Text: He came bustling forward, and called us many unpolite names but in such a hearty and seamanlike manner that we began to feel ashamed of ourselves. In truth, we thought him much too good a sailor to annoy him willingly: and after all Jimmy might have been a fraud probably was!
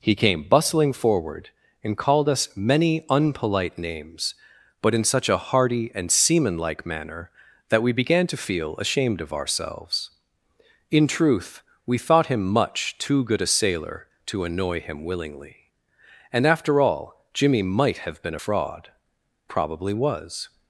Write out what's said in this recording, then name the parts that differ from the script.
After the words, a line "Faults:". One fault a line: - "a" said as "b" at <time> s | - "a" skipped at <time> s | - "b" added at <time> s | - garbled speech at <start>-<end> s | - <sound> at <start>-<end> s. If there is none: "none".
He came bustling forward, and called us many unpolite names but in such a hearty and seamanlike manner that we began to feel ashamed of ourselves. In truth, we thought him much too good a sailor to annoy him willingly: and after all Jimmy might have been a fraud probably was!
Faults:
none